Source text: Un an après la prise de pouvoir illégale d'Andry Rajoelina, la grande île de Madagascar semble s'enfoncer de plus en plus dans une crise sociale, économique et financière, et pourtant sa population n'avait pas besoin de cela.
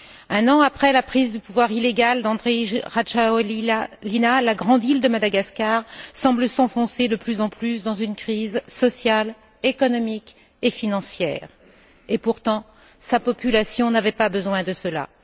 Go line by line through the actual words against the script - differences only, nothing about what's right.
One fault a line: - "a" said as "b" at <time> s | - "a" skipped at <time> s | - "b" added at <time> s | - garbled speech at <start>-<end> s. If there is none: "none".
none